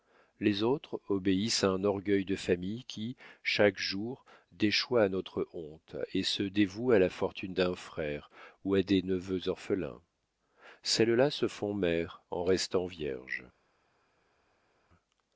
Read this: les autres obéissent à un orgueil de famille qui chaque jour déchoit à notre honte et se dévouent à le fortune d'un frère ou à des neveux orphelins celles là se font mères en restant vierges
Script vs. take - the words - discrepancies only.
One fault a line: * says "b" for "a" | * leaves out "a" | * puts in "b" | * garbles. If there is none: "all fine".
* says "la" for "le"